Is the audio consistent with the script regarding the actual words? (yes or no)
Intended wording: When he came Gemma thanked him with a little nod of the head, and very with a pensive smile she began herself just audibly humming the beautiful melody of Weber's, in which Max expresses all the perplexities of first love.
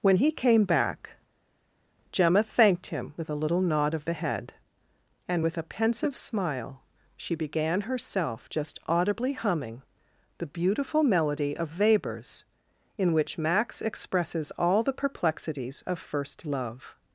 no